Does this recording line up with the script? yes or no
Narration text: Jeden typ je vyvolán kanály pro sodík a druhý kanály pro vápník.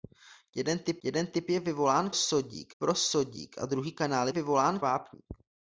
no